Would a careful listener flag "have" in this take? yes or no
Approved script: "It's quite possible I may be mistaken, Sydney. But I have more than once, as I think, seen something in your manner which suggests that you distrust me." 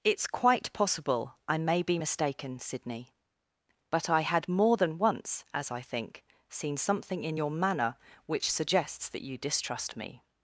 yes